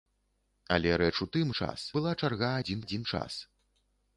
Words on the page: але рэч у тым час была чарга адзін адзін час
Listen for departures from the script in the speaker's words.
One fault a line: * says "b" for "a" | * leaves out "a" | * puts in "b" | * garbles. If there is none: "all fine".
all fine